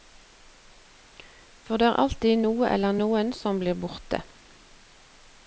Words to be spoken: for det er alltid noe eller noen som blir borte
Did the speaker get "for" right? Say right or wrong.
right